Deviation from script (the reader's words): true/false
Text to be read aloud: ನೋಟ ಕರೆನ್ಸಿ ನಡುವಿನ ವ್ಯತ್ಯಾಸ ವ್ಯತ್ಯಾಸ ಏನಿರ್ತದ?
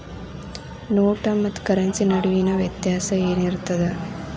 true